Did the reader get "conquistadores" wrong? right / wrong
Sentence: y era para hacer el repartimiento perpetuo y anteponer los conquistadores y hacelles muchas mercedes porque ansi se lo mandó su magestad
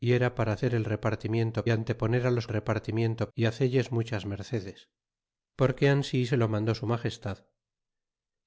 wrong